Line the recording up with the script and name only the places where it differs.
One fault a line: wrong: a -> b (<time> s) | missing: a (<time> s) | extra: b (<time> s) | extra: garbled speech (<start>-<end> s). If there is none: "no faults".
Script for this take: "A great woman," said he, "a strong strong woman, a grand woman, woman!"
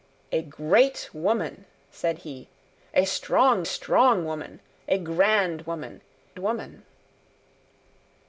no faults